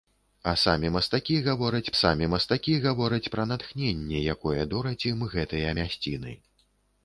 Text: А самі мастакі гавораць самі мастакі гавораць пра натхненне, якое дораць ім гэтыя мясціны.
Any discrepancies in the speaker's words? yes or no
no